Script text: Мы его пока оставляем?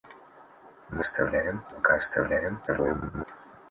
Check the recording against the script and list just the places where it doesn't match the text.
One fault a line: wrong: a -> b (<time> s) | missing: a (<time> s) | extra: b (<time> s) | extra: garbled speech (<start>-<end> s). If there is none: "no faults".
wrong: его -> оставляем (1.0 s)
extra: garbled speech (2.7-3.2 s)